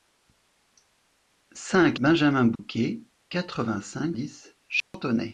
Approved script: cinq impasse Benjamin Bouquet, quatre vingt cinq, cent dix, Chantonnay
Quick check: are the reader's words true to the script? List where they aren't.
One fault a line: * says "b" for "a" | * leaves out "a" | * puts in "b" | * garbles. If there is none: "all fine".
* leaves out "impasse"
* leaves out "cent"